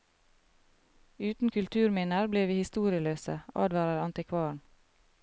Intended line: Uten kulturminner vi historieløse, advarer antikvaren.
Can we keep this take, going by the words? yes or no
no